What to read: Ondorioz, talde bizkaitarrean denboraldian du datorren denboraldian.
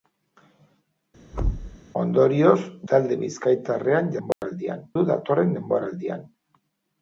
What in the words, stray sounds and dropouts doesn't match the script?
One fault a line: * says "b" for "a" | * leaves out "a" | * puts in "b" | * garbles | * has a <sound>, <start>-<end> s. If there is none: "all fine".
* has a thud, 1.3-1.8 s
* has a dropout, 4.3-4.4 s